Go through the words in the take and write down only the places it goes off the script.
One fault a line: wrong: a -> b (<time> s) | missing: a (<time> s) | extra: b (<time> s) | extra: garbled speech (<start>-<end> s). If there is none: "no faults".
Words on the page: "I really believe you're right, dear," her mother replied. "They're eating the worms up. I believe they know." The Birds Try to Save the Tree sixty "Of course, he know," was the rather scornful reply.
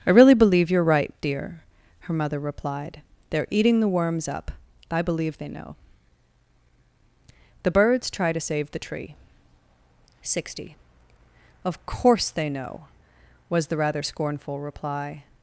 wrong: he -> they (12.3 s)